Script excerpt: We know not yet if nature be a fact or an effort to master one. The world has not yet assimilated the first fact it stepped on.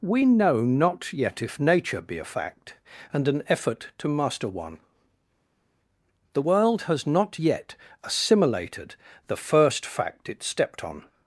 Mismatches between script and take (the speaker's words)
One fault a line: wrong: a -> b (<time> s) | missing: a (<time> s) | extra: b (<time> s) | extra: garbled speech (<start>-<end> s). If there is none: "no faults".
wrong: or -> and (3.1 s)